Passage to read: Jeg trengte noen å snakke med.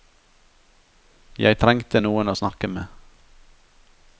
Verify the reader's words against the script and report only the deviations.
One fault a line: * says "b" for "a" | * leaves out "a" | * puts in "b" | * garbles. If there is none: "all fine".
all fine